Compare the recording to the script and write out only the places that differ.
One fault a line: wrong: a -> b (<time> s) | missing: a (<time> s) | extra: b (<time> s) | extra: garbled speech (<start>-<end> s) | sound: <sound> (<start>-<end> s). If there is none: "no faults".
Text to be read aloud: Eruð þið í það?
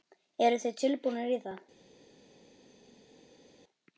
extra: tilbúnir (0.8 s)